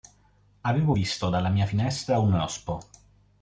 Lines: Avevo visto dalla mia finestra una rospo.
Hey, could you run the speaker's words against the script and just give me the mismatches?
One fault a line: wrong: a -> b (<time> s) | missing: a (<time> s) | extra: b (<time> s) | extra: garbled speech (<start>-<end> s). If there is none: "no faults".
wrong: una -> un (2.2 s)